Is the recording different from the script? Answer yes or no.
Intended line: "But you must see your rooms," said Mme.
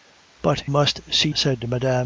yes